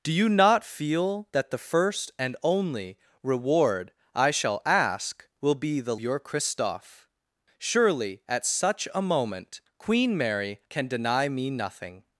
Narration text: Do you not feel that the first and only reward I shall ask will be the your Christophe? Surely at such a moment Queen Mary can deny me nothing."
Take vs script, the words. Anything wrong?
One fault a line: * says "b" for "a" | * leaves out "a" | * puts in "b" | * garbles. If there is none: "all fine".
all fine